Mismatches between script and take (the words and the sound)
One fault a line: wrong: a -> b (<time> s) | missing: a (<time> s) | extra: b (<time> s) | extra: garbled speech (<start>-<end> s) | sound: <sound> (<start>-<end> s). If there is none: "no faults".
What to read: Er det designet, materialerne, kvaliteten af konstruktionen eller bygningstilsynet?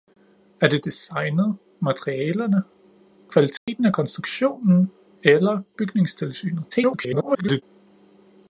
sound: dropout (3.6-3.7 s)
extra: garbled speech (6.7-7.6 s)